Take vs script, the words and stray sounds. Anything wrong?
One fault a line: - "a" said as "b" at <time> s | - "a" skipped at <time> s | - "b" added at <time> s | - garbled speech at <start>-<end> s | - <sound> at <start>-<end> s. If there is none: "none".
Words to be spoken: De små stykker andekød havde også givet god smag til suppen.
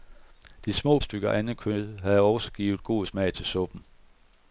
none